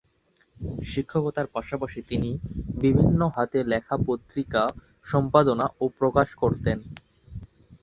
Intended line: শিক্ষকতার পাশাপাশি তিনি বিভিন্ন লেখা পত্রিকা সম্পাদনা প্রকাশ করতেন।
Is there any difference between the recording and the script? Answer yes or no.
yes